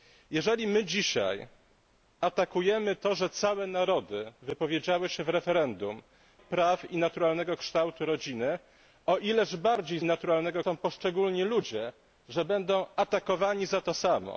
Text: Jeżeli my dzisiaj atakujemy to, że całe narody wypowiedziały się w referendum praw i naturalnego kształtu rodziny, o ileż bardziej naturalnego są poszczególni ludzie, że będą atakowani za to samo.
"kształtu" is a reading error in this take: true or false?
false